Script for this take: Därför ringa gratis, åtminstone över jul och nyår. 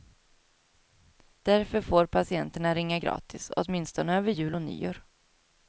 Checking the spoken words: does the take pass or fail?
fail